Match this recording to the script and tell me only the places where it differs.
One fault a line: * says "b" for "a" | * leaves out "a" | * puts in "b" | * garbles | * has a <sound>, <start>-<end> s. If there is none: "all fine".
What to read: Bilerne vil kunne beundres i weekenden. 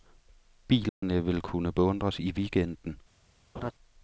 * has a dropout, 0.9-1.0 s
* has a laugh, 3.5-3.7 s